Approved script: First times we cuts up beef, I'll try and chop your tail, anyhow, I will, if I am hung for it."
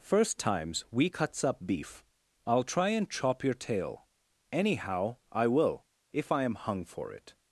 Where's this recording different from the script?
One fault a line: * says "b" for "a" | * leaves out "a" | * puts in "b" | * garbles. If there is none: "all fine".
all fine